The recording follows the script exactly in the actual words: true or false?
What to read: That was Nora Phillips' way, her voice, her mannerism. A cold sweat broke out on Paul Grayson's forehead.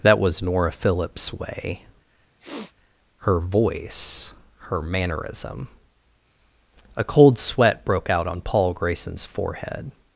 true